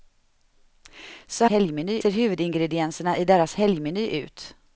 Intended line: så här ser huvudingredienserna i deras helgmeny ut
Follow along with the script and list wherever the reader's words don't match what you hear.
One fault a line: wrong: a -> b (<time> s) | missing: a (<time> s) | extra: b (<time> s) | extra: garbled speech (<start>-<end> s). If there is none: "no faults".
wrong: här -> helgmeny (1.5 s)